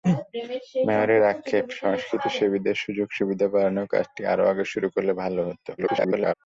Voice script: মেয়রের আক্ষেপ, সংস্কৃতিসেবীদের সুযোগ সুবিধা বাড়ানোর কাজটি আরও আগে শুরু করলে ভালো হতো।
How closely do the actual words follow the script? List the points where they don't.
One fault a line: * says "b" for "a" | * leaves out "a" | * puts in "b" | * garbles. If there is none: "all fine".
* garbles